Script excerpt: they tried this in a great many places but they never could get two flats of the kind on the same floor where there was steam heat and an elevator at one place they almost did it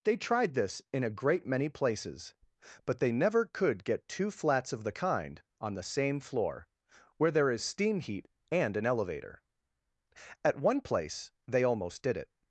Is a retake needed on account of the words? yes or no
yes